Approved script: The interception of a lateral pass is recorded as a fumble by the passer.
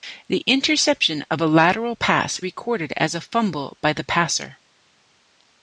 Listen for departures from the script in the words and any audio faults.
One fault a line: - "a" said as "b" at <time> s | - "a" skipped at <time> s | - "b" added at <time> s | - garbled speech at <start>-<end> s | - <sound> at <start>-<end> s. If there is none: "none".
- "is" skipped at 2.4 s